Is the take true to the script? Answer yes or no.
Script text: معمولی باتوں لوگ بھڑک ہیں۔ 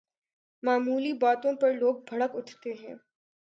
no